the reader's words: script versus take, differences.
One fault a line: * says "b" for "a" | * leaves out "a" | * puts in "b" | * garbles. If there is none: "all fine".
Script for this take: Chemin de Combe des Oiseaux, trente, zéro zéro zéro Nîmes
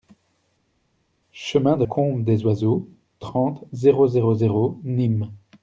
all fine